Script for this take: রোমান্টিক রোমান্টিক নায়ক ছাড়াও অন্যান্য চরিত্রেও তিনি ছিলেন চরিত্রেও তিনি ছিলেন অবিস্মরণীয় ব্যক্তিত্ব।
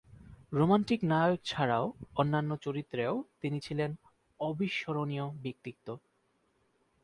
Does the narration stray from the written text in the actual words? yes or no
yes